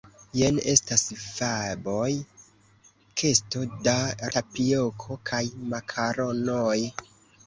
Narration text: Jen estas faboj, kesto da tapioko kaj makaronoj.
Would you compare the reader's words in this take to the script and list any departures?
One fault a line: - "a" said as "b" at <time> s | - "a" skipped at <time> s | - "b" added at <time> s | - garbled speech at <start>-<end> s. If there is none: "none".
none